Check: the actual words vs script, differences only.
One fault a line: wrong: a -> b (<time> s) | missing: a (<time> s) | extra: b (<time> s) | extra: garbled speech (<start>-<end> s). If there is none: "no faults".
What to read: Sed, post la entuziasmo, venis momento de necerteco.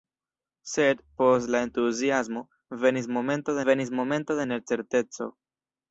extra: venis momento (3.7 s)